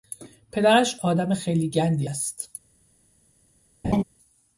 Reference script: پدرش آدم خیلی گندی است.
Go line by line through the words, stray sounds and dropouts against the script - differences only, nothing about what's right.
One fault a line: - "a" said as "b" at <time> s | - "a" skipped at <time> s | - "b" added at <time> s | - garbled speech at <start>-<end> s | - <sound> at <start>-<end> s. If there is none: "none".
- laugh at 3.8-4.0 s